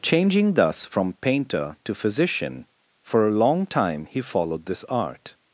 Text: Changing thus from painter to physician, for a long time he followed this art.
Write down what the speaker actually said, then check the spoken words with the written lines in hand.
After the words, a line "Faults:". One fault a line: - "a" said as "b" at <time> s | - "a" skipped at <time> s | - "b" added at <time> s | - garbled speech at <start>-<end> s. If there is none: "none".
Changing thus from painter to physician, for a long time he followed this art.
Faults:
none